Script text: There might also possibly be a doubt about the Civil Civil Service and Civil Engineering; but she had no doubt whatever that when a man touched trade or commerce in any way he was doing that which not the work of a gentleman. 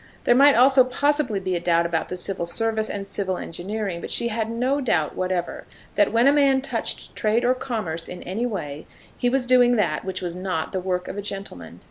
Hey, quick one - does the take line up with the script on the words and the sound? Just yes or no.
no